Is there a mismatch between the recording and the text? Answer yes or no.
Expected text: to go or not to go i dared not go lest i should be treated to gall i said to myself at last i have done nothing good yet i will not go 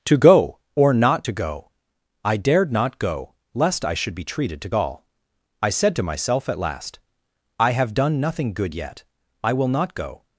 no